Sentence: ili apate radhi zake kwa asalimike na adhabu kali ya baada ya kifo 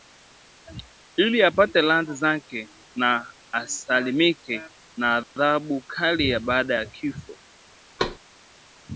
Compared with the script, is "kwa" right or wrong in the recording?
wrong